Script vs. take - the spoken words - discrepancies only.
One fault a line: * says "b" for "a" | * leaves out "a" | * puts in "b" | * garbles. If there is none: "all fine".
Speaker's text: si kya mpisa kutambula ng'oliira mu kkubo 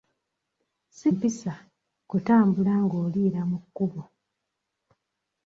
* leaves out "kya"